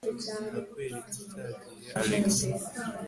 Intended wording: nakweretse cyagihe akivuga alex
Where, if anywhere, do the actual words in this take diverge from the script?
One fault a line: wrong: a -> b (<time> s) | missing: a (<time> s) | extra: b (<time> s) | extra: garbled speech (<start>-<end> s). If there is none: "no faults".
missing: akivuga (1.9 s)